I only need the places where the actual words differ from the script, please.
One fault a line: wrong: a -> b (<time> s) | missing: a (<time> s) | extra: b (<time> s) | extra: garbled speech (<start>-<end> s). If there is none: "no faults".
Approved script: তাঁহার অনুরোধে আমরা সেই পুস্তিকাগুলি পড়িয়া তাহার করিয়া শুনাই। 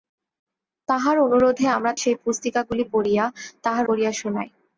no faults